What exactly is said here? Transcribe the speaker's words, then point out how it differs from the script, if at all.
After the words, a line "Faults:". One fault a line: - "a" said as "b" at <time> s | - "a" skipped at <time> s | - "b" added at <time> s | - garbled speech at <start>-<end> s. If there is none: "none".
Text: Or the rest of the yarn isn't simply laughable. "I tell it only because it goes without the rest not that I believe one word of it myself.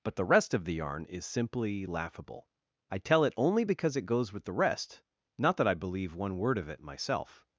But the rest of the yarn is simply laughable. "I tell it only because it goes with the rest not that I believe one word of it myself.
Faults:
- "Or" said as "But" at 0.0 s
- "isn't" said as "is" at 1.1 s
- "without" said as "with" at 4.3 s